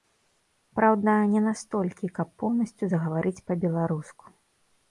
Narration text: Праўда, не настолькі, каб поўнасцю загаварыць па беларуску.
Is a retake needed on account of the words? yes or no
no